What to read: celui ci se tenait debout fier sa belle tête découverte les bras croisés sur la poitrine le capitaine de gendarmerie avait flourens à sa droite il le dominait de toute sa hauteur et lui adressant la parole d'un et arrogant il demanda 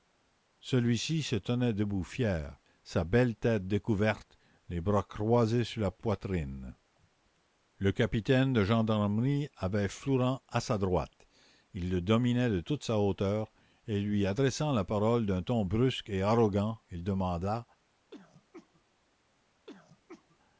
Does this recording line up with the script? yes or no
no